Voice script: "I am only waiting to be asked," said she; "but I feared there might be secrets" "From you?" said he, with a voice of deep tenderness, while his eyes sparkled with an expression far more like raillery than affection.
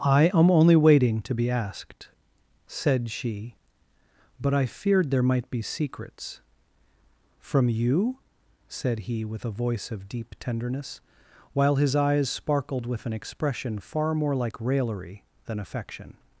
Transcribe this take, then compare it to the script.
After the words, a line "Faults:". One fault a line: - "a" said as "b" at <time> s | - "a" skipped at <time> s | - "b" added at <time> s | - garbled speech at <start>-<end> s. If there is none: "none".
"I am only waiting to be asked," said she; "but I feared there might be secrets" "From you?" said he, with a voice of deep tenderness, while his eyes sparkled with an expression far more like raillery than affection.
Faults:
none